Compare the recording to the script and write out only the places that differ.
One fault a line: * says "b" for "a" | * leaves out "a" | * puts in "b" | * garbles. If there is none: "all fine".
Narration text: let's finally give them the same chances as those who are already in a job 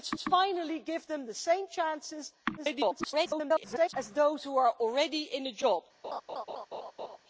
* puts in "let's"
* garbles